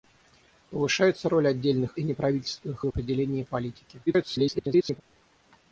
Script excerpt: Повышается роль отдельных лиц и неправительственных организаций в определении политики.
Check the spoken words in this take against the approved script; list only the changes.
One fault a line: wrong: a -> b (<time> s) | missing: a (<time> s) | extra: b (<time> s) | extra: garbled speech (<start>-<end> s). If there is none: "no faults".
missing: лиц (2.0 s)
missing: организаций (2.9 s)
extra: garbled speech (4.1-5.0 s)